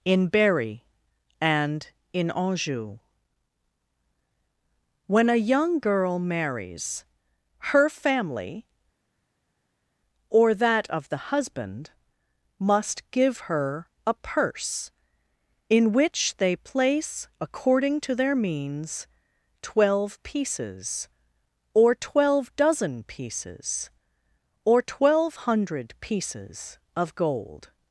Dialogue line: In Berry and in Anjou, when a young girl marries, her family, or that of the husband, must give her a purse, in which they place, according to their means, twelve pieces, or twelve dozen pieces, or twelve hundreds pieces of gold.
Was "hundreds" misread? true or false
true